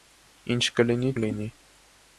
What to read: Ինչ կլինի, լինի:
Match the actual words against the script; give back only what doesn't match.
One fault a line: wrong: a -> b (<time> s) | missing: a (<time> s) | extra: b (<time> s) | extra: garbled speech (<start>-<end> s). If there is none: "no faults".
no faults